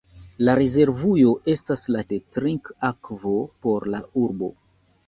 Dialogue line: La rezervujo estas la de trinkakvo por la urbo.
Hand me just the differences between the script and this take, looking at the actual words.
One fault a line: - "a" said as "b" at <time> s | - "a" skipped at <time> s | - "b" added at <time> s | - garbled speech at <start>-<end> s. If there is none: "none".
none